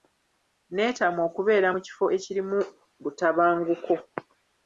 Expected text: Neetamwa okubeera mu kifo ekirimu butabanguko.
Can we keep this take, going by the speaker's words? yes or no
yes